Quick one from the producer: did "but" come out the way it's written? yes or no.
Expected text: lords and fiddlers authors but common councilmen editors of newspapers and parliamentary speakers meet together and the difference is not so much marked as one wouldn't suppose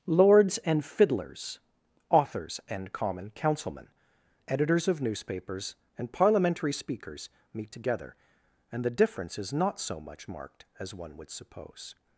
no